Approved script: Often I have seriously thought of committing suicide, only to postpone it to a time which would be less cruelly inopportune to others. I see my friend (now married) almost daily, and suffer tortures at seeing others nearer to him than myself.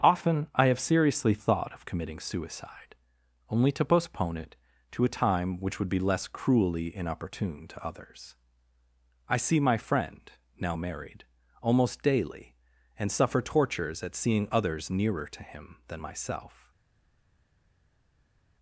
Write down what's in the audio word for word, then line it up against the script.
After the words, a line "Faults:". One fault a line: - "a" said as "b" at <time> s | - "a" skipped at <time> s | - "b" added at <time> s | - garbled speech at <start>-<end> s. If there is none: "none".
Often I have seriously thought of committing suicide, only to postpone it to a time which would be less cruelly inopportune to others. I see my friend (now married) almost daily, and suffer tortures at seeing others nearer to him than myself.
Faults:
none